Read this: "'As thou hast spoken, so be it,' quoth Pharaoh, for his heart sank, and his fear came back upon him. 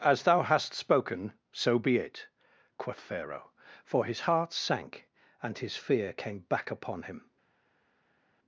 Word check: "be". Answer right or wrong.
right